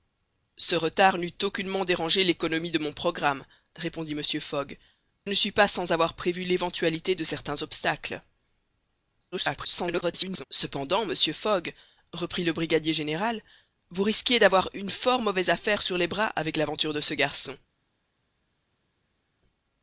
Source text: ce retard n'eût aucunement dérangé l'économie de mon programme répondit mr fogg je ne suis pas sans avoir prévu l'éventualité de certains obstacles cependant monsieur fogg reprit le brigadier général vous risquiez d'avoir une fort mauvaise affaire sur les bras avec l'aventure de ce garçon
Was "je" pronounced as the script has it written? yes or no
no